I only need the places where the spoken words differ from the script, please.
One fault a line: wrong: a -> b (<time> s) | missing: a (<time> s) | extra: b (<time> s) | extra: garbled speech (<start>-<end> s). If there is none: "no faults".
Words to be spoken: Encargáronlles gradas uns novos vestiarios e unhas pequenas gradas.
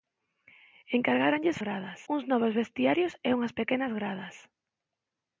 no faults